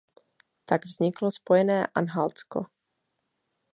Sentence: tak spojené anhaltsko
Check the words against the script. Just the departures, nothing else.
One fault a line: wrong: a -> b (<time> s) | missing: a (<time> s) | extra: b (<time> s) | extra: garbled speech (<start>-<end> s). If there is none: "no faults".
extra: vzniklo (0.8 s)